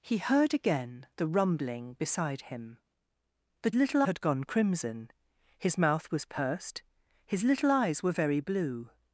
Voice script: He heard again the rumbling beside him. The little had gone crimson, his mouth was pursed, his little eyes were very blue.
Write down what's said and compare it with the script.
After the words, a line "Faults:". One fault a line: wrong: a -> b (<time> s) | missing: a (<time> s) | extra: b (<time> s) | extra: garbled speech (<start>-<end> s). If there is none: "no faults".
He heard again the rumbling beside him. The little had gone crimson, his mouth was pursed, his little eyes were very blue.
Faults:
no faults